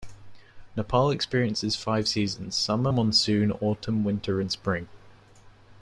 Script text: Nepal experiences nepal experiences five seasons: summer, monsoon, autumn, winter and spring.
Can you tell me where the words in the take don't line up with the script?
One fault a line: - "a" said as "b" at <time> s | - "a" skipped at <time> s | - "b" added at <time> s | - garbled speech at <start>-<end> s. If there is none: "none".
- "nepal experiences" skipped at 1.8 s